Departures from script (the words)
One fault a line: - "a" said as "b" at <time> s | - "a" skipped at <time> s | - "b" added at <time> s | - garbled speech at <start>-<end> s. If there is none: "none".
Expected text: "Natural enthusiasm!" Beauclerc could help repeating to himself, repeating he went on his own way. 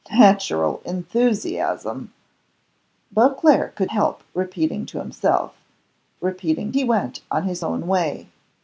none